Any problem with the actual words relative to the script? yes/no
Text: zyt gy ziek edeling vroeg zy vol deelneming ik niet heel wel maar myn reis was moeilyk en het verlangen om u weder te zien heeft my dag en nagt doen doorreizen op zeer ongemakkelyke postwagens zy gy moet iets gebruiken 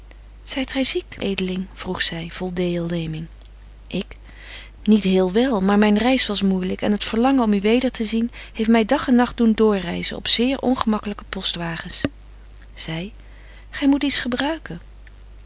no